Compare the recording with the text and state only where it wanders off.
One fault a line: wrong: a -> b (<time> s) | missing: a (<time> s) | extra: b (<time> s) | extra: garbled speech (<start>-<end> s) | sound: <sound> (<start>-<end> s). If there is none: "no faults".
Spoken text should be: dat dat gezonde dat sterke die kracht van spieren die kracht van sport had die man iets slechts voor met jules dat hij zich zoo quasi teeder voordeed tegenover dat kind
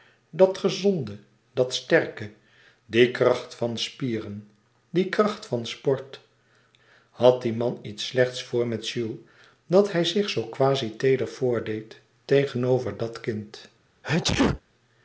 missing: dat (0.6 s)
sound: sneeze (14.0-14.6 s)